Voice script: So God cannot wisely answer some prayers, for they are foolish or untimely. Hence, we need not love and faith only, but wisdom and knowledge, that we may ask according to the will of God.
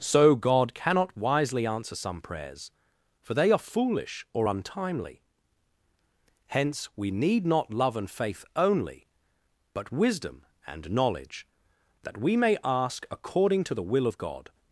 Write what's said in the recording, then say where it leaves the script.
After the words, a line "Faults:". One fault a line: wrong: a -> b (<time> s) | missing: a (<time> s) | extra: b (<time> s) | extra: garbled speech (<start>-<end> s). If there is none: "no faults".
So God cannot wisely answer some prayers, for they are foolish or untimely. Hence, we need not love and faith only, but wisdom and knowledge, that we may ask according to the will of God.
Faults:
no faults